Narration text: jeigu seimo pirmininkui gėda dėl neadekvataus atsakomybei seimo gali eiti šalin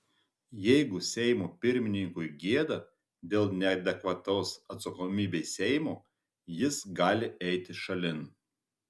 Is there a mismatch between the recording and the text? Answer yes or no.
yes